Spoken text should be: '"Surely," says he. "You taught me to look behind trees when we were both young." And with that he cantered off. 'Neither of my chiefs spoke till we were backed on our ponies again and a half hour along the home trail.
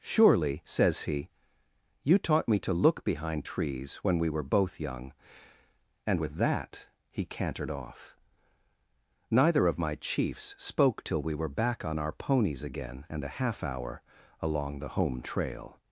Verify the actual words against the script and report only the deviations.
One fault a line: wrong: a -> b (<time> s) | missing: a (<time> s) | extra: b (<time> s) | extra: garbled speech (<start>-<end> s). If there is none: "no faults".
wrong: backed -> back (11.5 s)